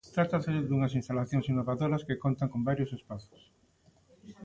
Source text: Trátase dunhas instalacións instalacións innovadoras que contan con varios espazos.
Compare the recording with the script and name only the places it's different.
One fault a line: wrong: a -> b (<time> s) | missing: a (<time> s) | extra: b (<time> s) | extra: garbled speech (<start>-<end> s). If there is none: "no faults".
missing: instalacións (1.4 s)